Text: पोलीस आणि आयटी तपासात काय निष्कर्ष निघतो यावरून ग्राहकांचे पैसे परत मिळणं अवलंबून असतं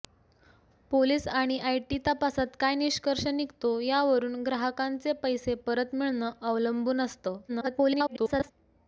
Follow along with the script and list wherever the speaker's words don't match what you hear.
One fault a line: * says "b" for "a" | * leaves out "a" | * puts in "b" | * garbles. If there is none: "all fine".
* garbles